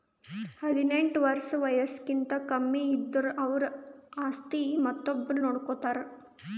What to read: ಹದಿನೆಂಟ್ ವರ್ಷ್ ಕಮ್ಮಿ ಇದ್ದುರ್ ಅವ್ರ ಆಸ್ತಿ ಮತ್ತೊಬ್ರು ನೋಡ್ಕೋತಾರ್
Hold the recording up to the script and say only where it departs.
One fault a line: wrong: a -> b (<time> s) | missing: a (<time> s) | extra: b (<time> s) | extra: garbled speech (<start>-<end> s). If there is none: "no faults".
extra: ವಯಸ್ಸ್ಕಿಂತ (1.6 s)